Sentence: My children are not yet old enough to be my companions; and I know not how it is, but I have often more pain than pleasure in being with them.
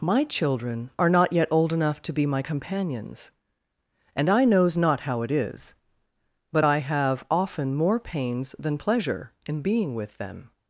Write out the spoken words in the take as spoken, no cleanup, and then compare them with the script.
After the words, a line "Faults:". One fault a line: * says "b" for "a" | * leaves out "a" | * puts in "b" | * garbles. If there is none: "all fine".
My children are not yet old enough to be my companions; and I knows not how it is, but I have often more pains than pleasure in being with them.
Faults:
* says "knows" for "know"
* says "pains" for "pain"